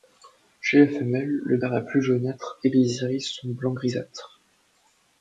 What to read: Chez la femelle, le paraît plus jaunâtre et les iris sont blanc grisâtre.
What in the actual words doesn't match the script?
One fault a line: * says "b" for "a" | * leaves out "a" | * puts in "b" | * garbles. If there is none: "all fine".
all fine